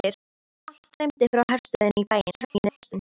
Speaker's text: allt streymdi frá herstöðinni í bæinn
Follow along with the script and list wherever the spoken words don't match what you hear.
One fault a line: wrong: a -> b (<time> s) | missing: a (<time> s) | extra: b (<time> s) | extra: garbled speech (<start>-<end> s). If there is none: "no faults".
extra: garbled speech (2.3-2.9 s)